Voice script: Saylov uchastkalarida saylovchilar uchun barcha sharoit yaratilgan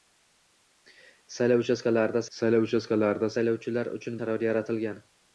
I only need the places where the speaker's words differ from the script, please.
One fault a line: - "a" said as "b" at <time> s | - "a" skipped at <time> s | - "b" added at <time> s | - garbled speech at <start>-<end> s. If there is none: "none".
- "saylov uchastkalarida" added at 2.4 s
- "barcha" skipped at 4.2 s